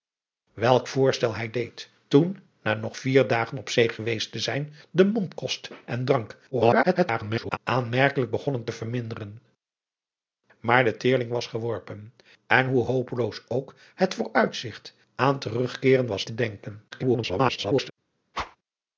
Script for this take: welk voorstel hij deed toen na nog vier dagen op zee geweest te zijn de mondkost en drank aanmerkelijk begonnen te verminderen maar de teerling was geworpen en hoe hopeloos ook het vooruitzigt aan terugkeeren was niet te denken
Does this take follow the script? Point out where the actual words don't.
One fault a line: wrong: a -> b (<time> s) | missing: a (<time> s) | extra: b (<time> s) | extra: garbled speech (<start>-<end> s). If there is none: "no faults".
extra: garbled speech (6.5-7.6 s)
missing: niet (16.3 s)
extra: garbled speech (16.9-17.9 s)